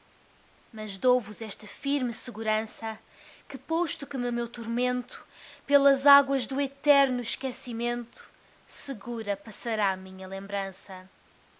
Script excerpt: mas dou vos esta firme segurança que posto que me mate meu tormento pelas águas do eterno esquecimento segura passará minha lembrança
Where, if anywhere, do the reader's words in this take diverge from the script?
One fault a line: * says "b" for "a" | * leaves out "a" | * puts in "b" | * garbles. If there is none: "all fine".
* leaves out "mate"